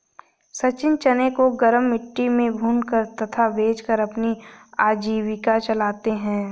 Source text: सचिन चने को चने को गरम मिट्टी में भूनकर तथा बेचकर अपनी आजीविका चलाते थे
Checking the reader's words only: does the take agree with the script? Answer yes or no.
no